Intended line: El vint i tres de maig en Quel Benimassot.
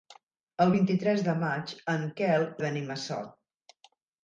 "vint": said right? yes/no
yes